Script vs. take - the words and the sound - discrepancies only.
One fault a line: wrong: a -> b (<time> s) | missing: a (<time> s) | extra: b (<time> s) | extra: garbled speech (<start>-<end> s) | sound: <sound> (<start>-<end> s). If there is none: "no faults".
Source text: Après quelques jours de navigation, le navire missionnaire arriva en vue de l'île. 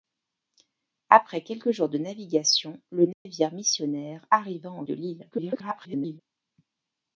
sound: dropout (3.1-3.3 s)
missing: vue (4.8 s)
extra: garbled speech (5.3-6.2 s)